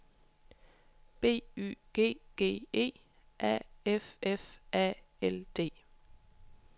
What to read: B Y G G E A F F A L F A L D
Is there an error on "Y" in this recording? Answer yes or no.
no